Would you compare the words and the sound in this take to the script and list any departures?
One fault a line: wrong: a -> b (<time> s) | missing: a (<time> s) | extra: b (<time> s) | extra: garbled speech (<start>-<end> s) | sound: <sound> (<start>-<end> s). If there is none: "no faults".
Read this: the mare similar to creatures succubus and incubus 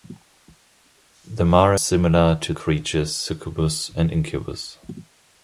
no faults